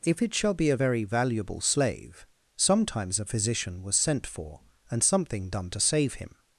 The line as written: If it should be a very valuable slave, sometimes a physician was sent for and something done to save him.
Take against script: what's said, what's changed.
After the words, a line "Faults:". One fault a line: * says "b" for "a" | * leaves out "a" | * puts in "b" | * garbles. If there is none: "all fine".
If it shall be a very valuable slave, sometimes a physician was sent for and something done to save him.
Faults:
* says "shall" for "should"